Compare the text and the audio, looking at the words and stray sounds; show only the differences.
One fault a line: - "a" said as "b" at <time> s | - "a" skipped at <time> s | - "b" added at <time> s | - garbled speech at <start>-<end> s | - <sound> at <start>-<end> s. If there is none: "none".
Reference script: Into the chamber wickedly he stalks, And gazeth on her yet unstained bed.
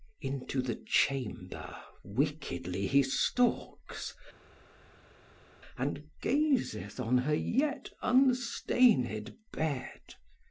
none